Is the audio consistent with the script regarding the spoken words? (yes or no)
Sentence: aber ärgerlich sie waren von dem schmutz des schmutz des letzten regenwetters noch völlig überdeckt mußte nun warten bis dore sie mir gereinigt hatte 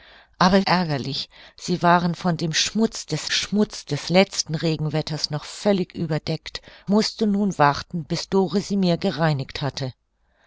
yes